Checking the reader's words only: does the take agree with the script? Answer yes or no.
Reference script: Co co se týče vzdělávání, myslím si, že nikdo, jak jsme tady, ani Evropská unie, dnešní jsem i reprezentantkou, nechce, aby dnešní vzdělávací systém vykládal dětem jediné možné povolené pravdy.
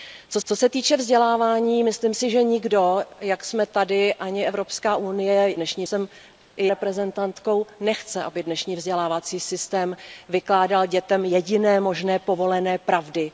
yes